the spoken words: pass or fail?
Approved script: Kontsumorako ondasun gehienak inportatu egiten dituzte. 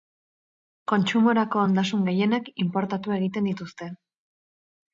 pass